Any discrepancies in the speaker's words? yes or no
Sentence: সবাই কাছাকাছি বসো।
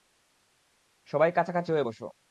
yes